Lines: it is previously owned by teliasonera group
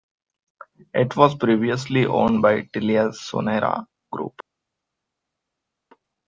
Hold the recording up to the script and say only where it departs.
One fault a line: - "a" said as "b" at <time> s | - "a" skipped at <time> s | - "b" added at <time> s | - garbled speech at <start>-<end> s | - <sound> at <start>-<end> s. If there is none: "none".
- "is" said as "was" at 1.1 s